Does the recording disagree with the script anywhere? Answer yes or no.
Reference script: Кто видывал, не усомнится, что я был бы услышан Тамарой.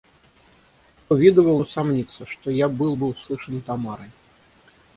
yes